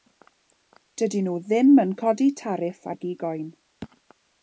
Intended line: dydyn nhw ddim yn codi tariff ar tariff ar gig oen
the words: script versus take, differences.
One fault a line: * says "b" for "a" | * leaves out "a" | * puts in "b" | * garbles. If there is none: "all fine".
* leaves out "tariff ar"